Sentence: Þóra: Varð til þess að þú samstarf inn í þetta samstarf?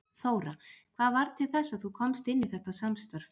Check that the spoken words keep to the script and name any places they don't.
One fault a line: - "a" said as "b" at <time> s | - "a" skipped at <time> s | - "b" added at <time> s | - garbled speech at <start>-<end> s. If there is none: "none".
- "Hvað" added at 0.9 s
- "samstarf" said as "komst" at 2.0 s